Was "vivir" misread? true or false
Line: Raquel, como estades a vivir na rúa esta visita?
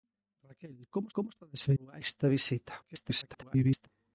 true